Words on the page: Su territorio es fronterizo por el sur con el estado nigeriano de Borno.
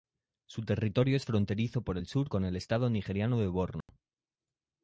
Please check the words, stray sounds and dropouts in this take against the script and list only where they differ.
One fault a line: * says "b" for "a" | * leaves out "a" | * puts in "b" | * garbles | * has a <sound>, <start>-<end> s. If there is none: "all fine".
* has a dropout, 3.8-3.9 s